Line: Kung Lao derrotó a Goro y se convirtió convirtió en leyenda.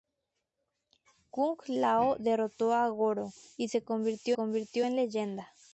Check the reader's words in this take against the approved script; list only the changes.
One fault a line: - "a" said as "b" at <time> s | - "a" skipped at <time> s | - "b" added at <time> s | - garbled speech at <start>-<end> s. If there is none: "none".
none